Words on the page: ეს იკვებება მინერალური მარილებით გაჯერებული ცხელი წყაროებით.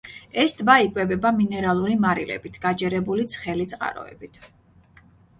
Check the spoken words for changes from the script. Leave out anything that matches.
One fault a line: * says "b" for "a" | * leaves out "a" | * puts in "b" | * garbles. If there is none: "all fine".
* puts in "ტბა"